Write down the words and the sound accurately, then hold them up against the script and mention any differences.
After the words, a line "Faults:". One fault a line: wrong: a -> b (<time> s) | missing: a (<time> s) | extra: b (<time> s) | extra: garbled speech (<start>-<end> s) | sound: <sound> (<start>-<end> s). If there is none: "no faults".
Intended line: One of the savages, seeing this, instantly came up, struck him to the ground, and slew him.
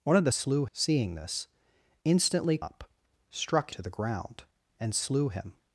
One of the slew, seeing this, instantly up, struck to the ground, and slew him.
Faults:
wrong: savages -> slew (0.3 s)
missing: came (2.6 s)
missing: him (3.7 s)